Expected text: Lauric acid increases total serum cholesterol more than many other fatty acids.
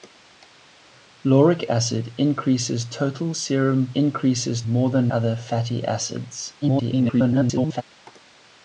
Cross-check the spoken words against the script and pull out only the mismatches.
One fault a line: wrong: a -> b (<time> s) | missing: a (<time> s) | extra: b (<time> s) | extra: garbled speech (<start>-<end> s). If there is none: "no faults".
wrong: cholesterol -> increases (3.9 s)
missing: many (5.1 s)
extra: garbled speech (6.6-7.8 s)